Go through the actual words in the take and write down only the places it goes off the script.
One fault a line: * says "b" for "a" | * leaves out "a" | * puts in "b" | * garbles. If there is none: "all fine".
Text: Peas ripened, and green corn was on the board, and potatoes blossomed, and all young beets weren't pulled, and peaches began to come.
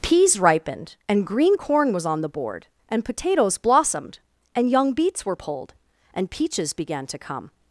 * leaves out "all"
* says "were" for "weren't"